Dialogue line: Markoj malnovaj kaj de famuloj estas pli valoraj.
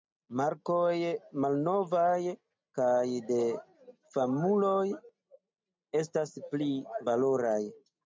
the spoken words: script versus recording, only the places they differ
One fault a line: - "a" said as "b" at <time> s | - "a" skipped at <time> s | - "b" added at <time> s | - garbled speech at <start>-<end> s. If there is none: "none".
none